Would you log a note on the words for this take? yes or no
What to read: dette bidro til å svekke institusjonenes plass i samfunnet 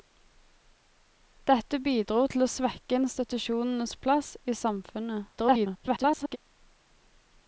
yes